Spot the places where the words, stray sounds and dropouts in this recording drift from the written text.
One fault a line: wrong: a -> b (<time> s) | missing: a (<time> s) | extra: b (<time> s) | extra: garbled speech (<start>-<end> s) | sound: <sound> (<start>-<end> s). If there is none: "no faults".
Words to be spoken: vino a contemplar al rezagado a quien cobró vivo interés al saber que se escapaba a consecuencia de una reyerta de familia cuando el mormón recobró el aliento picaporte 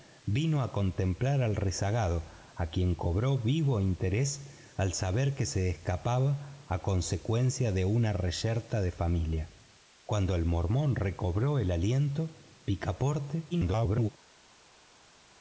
extra: garbled speech (13.5-14.1 s)